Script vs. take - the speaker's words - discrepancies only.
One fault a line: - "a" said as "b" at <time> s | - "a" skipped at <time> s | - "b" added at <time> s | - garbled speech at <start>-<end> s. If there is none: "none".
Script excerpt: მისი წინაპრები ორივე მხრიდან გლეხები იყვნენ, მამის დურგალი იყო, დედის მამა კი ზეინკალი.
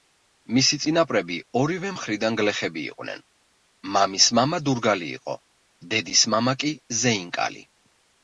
- "მამა" added at 4.4 s